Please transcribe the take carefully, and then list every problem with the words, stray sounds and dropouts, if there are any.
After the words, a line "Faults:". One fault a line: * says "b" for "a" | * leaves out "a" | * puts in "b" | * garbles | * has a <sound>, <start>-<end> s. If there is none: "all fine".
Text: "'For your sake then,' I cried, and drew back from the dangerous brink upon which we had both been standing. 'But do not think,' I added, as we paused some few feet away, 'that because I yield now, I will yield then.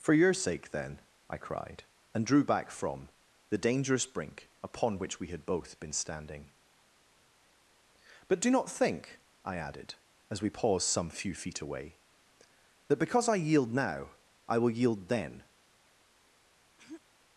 "'For your sake then,' I cried, and drew back from the dangerous brink upon which we had both been standing. 'But do not think,' I added, as we paused some few feet away, 'that because I yield now, I will yield then.
Faults:
* has a throat clearing, 16.8-17.0 s